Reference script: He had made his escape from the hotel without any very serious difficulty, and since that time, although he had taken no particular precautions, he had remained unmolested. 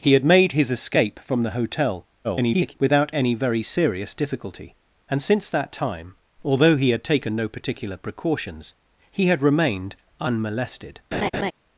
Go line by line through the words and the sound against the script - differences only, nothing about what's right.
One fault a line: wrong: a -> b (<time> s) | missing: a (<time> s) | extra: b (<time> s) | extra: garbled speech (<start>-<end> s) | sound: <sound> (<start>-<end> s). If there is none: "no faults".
extra: garbled speech (2.2-2.8 s)
sound: laugh (11.1-11.5 s)